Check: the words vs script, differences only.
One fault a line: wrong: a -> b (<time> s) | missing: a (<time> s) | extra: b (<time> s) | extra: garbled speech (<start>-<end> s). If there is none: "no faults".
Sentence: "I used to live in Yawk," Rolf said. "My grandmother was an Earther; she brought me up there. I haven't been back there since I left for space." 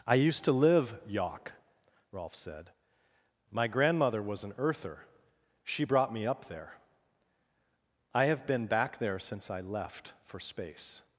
missing: in (1.0 s)
wrong: haven't -> have (8.3 s)